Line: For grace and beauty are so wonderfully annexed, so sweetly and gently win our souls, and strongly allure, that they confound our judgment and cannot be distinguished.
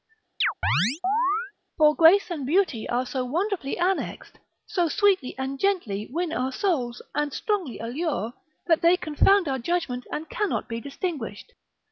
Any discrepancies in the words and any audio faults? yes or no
yes